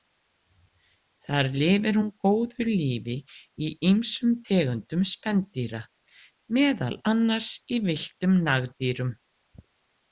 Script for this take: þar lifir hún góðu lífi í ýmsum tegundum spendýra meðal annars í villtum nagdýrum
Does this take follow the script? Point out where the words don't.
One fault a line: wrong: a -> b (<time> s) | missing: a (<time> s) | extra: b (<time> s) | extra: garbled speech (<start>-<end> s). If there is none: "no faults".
no faults